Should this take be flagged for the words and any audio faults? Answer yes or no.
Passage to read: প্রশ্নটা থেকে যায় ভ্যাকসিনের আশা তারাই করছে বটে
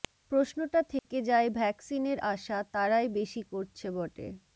yes